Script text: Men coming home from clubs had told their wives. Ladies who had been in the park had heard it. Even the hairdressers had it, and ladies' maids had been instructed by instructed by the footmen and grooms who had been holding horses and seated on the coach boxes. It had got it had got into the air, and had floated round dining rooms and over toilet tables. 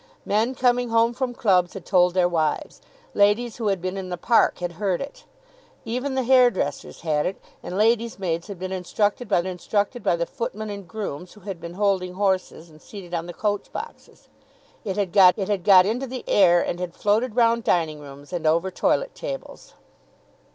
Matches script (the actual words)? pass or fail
pass